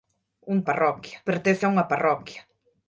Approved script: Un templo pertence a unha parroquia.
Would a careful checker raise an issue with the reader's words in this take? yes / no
yes